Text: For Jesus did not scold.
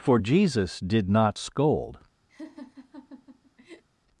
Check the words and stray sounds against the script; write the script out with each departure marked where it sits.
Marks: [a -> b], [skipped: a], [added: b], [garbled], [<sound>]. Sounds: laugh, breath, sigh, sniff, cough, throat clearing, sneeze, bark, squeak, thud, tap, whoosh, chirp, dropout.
For Jesus did not scold. [laugh]